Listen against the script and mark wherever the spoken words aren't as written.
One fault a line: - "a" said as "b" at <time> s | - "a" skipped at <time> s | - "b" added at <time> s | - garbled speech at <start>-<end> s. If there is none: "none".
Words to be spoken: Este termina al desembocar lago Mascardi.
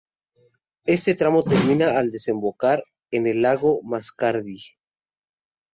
- "tramo" added at 1.1 s
- "en el" added at 3.1 s